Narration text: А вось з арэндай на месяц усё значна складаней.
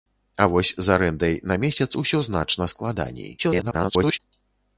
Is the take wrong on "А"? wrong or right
right